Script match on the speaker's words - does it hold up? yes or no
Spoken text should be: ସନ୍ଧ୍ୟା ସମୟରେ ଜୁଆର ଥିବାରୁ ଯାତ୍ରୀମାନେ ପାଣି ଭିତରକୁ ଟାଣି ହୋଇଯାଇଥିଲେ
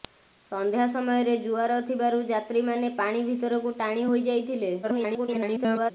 no